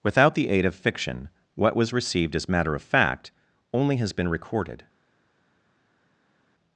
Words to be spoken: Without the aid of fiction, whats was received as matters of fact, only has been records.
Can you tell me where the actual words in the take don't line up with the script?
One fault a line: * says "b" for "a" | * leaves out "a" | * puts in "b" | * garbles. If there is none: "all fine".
* says "what" for "whats"
* says "matter" for "matters"
* says "recorded" for "records"